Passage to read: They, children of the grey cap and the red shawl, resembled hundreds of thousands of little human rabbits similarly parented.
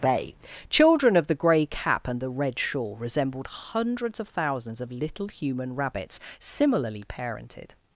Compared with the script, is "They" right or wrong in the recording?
wrong